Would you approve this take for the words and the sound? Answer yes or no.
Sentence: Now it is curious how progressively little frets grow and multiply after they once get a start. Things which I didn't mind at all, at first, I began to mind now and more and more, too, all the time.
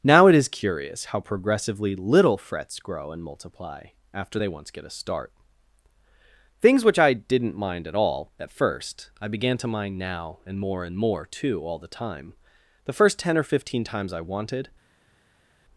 no